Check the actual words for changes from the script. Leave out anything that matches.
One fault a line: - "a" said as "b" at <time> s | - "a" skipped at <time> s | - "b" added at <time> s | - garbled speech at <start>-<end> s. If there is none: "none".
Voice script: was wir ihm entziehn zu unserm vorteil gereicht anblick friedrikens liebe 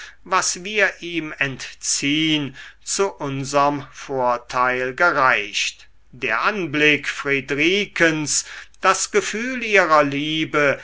- "der" added at 6.1 s
- "das gefühl ihrer" added at 8.8 s